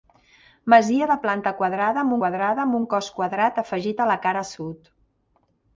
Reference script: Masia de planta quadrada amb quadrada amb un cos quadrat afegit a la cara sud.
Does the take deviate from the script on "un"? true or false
false